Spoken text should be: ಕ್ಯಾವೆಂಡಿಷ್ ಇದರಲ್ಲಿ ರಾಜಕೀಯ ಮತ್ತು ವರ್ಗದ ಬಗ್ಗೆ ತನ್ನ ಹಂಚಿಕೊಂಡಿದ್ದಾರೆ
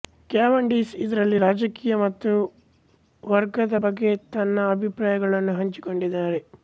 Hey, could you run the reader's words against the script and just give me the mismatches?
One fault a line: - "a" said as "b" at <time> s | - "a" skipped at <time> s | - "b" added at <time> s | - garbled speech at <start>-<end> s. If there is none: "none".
- "ಅಭಿಪ್ರಾಯಗಳನ್ನು" added at 4.7 s